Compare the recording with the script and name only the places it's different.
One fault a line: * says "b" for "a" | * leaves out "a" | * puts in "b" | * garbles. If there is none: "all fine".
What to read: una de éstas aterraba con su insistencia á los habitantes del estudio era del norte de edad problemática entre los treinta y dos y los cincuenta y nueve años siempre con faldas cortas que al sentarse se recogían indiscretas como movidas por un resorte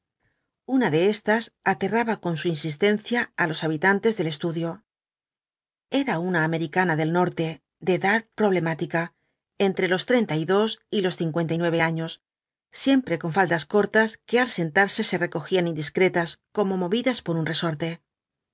* puts in "una americana"